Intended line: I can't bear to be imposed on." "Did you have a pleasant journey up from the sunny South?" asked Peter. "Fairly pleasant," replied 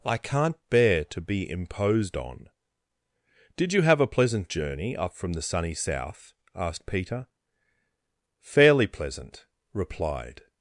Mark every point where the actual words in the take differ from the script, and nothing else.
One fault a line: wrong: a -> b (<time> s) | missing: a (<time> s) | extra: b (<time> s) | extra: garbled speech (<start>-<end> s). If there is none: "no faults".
no faults